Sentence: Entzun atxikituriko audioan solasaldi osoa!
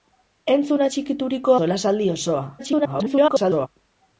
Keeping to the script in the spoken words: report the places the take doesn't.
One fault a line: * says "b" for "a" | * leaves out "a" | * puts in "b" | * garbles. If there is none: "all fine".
* leaves out "audioan"
* garbles